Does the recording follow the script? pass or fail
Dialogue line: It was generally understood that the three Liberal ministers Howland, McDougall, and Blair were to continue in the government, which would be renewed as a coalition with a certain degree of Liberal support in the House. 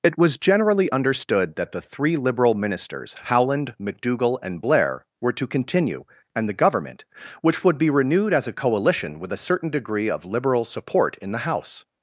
fail